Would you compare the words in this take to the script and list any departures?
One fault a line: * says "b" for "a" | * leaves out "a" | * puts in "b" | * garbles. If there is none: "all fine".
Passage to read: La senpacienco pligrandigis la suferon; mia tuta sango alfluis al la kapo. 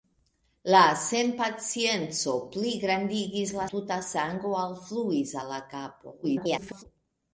* leaves out "suferon mia"
* garbles